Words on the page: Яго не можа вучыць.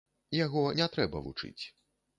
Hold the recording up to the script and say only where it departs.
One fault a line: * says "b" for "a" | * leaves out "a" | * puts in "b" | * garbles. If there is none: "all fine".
* says "трэба" for "можа"